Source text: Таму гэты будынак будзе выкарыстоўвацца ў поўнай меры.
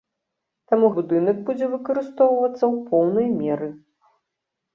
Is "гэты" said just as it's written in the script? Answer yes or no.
no